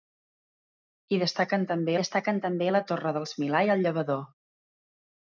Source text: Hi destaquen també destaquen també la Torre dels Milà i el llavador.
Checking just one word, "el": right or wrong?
right